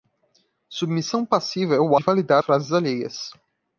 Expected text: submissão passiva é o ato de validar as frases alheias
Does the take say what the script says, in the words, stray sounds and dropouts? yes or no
no